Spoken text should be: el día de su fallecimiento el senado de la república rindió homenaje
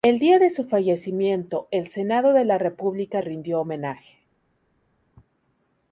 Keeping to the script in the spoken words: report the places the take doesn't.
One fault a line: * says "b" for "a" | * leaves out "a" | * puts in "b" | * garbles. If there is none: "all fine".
all fine